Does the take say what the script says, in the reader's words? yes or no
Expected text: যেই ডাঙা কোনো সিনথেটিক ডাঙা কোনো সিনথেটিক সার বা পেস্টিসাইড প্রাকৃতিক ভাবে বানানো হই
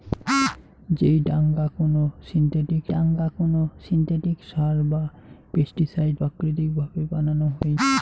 yes